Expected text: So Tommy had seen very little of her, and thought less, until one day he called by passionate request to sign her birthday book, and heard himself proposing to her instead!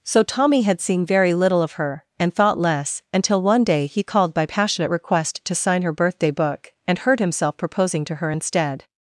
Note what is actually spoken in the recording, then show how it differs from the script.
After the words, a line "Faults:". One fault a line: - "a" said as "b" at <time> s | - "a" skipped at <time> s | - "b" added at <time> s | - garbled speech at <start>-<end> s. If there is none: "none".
So Tommy had seen very little of her, and thought less, until one day he called by passionate request to sign her birthday book, and heard himself proposing to her instead!
Faults:
none